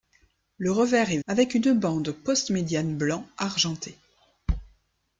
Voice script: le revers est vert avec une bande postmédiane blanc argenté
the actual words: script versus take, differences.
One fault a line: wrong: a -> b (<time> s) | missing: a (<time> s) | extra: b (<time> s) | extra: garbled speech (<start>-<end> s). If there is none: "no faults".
missing: vert (1.2 s)